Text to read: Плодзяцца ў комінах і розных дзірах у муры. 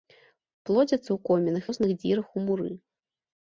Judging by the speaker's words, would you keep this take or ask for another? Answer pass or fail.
fail